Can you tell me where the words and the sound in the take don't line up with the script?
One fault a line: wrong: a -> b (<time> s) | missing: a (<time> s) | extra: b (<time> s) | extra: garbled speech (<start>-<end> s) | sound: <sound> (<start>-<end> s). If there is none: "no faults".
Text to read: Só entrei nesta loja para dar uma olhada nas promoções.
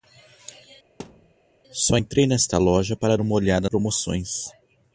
sound: thud (1.0-1.3 s)
missing: dar (3.2 s)
missing: nas (3.7 s)